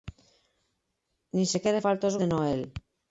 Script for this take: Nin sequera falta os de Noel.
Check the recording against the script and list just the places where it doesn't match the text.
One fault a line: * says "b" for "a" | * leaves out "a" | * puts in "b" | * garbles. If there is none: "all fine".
all fine